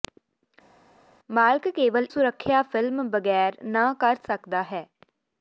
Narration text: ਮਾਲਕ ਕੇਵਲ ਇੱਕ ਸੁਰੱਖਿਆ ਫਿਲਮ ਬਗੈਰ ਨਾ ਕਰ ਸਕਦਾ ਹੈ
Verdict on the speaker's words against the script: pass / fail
fail